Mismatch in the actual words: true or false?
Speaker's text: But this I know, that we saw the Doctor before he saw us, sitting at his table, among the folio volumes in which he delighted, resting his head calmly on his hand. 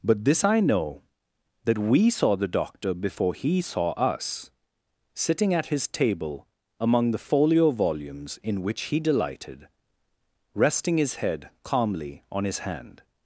false